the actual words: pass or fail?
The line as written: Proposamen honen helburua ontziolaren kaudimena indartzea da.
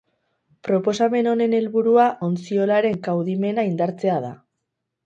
pass